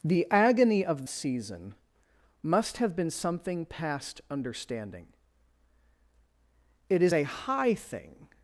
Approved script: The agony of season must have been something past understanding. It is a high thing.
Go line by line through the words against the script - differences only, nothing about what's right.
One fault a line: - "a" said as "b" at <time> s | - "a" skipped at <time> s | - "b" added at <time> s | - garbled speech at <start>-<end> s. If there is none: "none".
none